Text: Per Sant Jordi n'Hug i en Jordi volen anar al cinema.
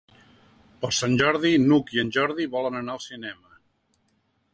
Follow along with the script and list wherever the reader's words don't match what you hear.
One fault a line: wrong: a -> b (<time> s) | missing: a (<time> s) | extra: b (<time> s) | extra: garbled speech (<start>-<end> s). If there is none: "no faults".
no faults